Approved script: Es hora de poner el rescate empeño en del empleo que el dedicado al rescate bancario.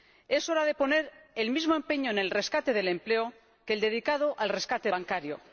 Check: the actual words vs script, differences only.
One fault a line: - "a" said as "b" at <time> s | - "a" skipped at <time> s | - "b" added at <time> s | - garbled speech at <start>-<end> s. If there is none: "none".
- "rescate" said as "mismo" at 1.5 s
- "el rescate" added at 2.2 s